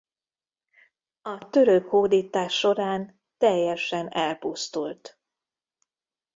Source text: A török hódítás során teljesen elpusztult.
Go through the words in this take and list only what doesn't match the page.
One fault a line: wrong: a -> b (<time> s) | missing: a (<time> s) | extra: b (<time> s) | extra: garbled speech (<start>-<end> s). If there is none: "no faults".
no faults